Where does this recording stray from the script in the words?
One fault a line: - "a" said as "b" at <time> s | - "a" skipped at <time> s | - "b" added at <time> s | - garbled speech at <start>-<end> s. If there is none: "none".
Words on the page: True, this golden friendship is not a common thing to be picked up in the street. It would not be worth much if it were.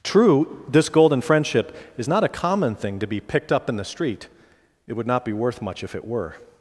none